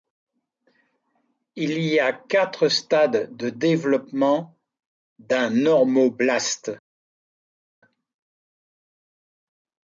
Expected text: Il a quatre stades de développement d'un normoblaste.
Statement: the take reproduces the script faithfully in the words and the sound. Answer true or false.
false